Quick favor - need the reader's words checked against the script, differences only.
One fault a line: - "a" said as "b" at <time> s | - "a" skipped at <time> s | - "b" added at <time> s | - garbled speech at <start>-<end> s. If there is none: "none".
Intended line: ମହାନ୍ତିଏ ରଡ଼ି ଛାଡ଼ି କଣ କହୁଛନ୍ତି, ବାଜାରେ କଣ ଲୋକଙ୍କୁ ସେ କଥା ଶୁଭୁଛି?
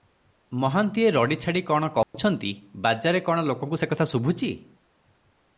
none